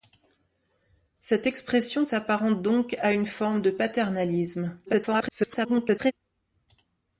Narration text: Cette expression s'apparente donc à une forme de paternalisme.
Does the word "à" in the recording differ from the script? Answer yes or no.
no